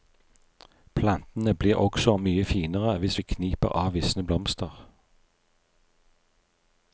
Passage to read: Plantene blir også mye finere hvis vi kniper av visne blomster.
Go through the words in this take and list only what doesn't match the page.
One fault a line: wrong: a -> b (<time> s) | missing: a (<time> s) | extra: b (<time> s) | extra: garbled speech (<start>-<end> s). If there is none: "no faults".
no faults